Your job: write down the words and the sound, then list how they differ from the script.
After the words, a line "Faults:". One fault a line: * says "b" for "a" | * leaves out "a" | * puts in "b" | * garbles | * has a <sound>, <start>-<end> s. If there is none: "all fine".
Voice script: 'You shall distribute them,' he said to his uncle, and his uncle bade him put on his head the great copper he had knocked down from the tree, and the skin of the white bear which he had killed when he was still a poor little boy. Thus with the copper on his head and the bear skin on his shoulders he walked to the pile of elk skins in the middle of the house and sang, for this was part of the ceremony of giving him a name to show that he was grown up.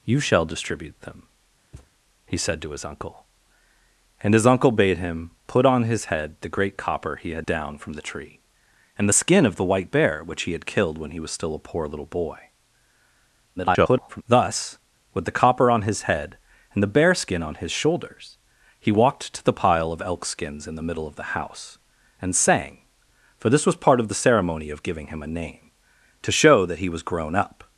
'You shall distribute them,' he said to his uncle, and his uncle bade him put on his head the great copper he had down from the tree, and the skin of the white bear which he had killed when he was still a poor little boy. [garbled] Thus with the copper on his head and the bear skin on his shoulders he walked to the pile of elk skins in the middle of the house and sang, for this was part of the ceremony of giving him a name to show that he was grown up.
Faults:
* has a thud, 1.7-1.9 s
* leaves out "knocked"
* garbles